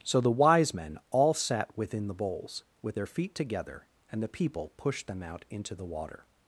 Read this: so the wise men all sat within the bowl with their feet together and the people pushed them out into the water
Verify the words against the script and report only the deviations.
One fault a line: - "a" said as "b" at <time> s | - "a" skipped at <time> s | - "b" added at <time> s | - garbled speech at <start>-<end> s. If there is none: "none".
- "bowl" said as "bowls" at 2.1 s